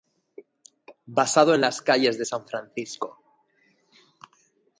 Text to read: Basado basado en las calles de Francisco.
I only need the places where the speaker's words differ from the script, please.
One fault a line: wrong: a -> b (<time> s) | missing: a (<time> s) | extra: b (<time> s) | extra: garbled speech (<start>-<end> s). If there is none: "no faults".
missing: basado (1.5 s)
extra: San (2.3 s)